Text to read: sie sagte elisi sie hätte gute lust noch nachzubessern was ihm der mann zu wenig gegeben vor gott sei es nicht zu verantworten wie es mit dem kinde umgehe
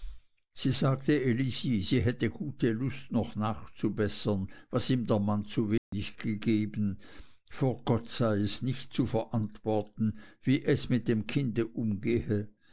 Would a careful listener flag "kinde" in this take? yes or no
no